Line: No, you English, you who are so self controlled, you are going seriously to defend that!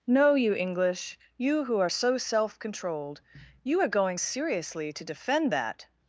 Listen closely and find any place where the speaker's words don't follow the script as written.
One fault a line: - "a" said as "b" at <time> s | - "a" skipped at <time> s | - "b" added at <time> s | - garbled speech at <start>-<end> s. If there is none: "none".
none